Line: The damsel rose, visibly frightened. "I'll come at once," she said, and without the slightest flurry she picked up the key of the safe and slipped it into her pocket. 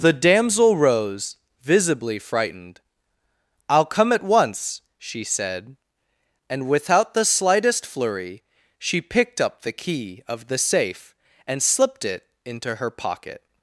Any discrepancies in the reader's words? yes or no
no